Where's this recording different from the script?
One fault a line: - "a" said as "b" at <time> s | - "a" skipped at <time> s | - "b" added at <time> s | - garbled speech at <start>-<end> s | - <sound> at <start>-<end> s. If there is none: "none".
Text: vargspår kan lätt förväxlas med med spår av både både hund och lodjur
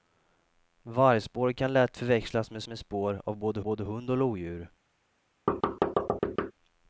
- thud at 5.5-6.5 s